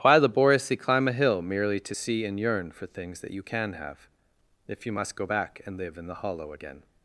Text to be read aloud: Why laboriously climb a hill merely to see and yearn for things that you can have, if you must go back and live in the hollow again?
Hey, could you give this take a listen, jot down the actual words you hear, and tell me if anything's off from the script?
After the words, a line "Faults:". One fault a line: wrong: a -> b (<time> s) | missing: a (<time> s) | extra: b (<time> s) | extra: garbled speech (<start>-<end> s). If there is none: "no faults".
Why laboriously climb a hill merely to see and yearn for things that you can have, if you must go back and live in the hollow again?
Faults:
no faults